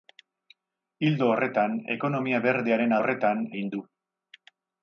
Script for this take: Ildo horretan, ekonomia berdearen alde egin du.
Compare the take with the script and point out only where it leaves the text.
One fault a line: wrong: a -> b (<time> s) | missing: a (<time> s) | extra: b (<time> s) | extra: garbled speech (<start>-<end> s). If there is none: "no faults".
wrong: alde -> horretan (3.0 s)